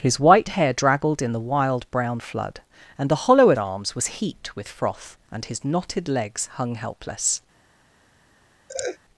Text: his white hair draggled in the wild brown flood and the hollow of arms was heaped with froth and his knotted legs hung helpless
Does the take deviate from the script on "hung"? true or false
false